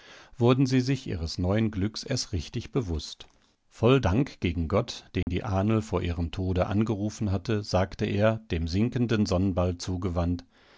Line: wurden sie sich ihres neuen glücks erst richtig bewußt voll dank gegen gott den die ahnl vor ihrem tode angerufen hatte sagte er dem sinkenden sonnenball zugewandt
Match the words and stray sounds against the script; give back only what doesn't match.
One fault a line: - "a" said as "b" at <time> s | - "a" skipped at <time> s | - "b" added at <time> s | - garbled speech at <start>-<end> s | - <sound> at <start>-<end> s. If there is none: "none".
- dropout at 5.2-5.3 s